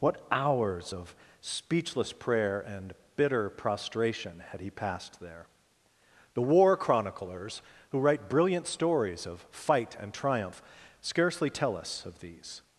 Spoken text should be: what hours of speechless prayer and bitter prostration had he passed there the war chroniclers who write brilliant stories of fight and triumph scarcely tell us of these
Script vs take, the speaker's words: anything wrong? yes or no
no